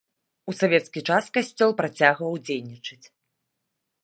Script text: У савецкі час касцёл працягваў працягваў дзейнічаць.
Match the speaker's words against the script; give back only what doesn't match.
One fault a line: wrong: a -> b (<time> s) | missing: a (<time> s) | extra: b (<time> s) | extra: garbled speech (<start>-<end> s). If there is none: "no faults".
missing: працягваў (2.3 s)